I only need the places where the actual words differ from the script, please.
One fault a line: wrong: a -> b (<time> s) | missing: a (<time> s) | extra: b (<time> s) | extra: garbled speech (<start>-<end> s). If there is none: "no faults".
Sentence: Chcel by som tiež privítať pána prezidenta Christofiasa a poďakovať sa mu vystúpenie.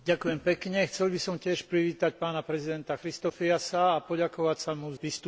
no faults